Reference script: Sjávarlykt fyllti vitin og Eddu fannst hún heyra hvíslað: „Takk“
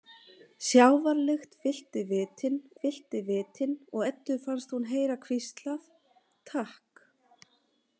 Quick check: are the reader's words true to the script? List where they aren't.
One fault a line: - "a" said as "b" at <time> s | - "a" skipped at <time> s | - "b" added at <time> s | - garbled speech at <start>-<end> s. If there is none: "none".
- "fyllti vitin" added at 2.8 s